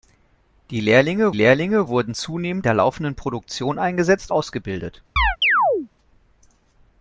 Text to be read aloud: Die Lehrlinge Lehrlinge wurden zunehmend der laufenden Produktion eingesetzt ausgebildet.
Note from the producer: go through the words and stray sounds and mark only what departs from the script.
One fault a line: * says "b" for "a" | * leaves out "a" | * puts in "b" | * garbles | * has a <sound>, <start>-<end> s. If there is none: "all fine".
* has a chirp, 5.2-5.9 s